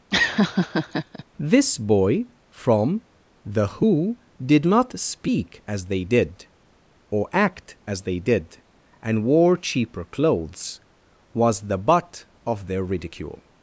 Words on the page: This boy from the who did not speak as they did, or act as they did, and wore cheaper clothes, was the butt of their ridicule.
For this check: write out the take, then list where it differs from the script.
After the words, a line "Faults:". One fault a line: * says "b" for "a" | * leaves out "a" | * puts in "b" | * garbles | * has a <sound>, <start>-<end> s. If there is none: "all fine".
This boy from the who did not speak as they did, or act as they did, and wore cheaper clothes, was the butt of their ridicule.
Faults:
* has a laugh, 0.1-1.2 s